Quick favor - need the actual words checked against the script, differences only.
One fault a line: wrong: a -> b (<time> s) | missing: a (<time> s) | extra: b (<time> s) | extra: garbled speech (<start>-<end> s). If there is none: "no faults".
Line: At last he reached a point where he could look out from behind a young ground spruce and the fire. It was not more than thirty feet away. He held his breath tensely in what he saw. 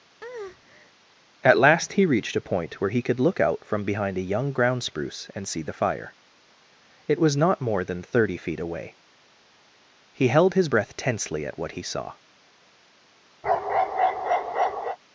extra: see (5.5 s)
wrong: in -> at (11.4 s)